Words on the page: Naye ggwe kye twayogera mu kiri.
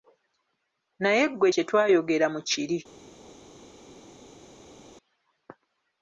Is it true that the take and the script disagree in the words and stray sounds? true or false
false